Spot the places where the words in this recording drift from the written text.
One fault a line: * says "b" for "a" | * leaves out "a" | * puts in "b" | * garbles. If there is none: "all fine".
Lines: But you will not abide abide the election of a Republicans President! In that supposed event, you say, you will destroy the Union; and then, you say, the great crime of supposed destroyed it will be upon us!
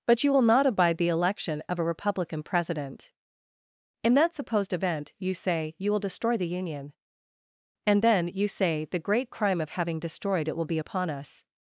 * leaves out "abide"
* says "Republican" for "Republicans"
* says "having" for "supposed"